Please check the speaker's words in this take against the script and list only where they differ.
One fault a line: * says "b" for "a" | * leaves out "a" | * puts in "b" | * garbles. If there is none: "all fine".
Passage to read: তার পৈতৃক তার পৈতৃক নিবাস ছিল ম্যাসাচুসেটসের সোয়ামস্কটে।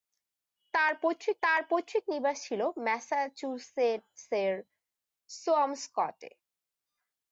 all fine